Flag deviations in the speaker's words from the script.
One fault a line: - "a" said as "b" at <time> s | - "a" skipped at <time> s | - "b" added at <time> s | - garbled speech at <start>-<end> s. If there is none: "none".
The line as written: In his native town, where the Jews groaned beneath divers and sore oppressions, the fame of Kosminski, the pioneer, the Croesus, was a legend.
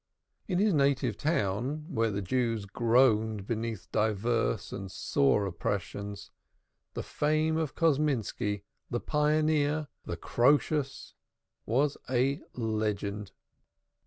none